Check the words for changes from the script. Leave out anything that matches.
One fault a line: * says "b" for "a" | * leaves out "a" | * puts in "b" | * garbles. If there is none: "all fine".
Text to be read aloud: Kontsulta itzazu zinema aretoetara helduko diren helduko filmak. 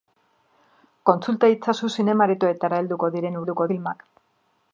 all fine